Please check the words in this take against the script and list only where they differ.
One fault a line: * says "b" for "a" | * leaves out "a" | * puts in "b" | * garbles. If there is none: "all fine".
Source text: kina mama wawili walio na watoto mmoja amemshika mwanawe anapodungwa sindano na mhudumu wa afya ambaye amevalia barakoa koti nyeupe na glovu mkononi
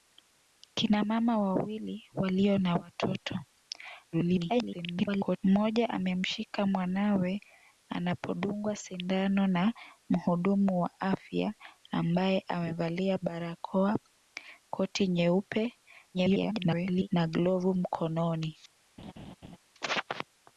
* garbles
* garbles